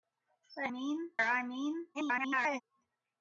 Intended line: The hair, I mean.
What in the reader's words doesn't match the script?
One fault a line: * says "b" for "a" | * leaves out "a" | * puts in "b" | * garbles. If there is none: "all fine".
* says "mean" for "hair"
* garbles